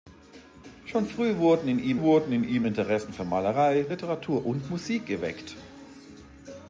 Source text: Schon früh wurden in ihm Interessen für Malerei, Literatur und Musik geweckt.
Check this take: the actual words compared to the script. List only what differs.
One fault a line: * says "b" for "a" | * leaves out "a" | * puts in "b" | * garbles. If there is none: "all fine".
* puts in "wurden in ihm"